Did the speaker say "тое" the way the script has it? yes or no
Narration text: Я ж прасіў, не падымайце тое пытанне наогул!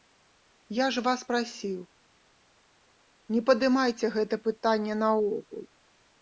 no